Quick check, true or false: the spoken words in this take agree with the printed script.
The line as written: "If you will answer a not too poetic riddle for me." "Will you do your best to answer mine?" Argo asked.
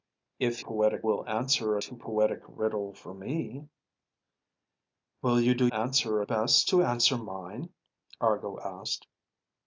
false